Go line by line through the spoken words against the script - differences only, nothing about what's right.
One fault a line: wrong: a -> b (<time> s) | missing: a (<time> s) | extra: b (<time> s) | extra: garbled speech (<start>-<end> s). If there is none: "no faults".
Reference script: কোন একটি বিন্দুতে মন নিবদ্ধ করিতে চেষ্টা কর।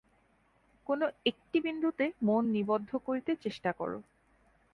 no faults